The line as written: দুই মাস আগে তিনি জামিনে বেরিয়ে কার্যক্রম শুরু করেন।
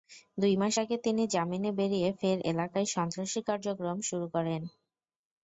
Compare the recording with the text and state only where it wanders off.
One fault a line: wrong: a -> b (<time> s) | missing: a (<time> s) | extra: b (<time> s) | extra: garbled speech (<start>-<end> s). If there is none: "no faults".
extra: ফের এলাকায় সন্ত্রাসী (2.2 s)